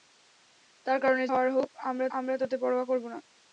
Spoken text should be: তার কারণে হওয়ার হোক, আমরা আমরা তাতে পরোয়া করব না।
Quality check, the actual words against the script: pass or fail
pass